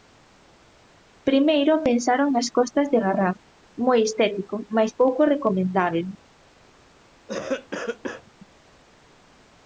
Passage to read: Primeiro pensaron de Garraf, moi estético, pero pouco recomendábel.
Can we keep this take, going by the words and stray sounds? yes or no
no